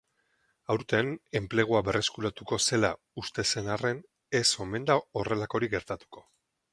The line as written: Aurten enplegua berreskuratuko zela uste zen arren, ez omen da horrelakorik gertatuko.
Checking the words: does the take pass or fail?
pass